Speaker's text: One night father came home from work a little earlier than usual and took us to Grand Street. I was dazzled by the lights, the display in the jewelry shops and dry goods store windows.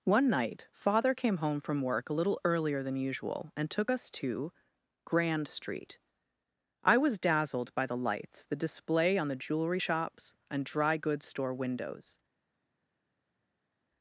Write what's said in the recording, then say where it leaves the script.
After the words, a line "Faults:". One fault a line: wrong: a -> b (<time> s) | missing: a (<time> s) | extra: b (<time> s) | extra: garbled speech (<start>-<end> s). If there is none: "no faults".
One night father came home from work a little earlier than usual and took us to Grand Street. I was dazzled by the lights, the display on the jewelry shops and dry goods store windows.
Faults:
wrong: in -> on (9.2 s)